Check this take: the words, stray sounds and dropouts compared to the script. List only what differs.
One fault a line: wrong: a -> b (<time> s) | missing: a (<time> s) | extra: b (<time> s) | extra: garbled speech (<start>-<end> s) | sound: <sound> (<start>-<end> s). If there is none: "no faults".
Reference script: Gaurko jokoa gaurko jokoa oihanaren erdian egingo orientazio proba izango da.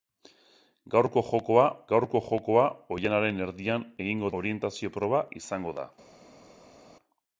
no faults